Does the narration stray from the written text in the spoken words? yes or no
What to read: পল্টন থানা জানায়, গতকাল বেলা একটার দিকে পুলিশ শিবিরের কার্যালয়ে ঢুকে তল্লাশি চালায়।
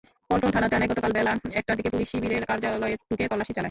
no